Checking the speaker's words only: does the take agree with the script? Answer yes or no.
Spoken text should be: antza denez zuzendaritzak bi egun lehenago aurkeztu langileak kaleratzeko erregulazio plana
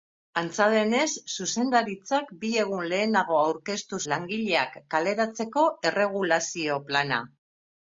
yes